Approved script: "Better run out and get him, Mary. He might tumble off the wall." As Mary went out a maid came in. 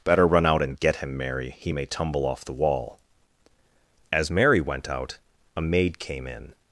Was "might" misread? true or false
true